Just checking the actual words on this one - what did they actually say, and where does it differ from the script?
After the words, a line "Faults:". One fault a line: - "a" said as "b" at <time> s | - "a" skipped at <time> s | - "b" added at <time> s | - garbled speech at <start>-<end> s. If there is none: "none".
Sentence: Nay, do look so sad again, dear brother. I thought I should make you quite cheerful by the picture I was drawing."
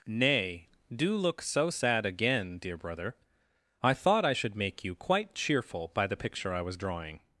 Nay, do look so sad again, dear brother. I thought I should make you quite cheerful by the picture I was drawing."
Faults:
none